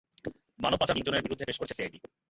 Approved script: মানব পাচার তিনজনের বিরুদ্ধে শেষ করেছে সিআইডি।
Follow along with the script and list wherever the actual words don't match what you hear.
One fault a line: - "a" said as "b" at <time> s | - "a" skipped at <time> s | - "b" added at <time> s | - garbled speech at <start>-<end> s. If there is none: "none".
none